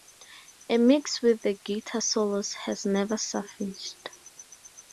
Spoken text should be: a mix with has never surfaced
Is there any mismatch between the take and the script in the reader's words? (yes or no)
yes